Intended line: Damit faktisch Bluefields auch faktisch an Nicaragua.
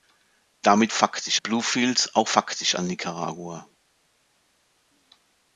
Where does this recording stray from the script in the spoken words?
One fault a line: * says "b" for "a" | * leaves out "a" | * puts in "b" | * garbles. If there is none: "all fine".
all fine